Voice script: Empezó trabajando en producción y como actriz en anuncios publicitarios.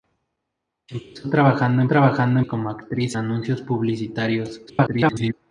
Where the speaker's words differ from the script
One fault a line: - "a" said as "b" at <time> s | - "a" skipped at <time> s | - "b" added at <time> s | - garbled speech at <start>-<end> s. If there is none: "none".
- "producción" said as "trabajando" at 1.9 s
- "en" skipped at 3.2 s
- garbled speech at 4.7-5.3 s